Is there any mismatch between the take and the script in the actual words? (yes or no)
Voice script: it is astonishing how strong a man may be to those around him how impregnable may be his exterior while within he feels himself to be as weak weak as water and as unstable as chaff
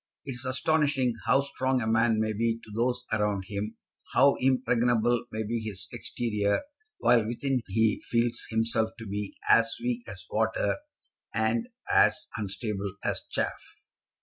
yes